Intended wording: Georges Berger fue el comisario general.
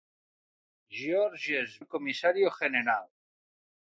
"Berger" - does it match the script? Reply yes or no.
no